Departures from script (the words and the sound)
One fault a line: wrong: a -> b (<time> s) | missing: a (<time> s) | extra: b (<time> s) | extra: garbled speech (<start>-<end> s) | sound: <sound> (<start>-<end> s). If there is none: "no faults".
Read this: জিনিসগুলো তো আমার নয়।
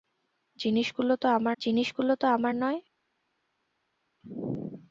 extra: জিনিসগুলো তো আমার (1.6 s)